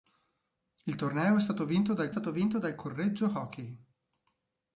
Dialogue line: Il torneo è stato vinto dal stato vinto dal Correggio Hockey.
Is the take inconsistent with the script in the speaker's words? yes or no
no